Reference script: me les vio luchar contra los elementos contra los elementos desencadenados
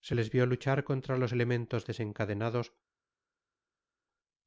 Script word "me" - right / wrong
wrong